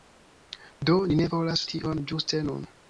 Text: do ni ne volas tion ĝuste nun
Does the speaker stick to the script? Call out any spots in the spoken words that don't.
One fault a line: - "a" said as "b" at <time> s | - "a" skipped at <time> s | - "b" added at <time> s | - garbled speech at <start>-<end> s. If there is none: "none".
none